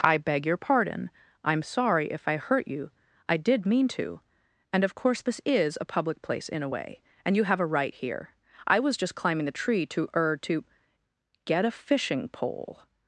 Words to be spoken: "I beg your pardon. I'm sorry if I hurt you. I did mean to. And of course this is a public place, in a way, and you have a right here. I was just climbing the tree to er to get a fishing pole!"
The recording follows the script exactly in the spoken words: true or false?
true